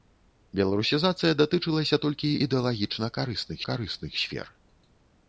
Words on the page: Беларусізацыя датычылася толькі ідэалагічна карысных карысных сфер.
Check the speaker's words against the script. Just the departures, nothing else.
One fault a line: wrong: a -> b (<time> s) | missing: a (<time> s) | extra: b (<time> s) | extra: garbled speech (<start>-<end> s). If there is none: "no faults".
no faults